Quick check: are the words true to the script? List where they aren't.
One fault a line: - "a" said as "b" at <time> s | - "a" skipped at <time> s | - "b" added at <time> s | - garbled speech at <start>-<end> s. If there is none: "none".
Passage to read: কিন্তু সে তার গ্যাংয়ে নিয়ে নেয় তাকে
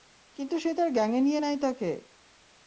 none